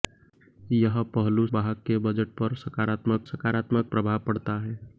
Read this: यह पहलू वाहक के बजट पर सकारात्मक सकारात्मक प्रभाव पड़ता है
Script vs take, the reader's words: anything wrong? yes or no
no